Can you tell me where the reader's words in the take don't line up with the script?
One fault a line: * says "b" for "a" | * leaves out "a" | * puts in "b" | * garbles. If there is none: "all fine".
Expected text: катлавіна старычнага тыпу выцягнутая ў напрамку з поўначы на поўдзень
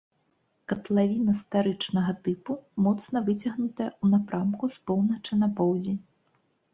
* puts in "моцна"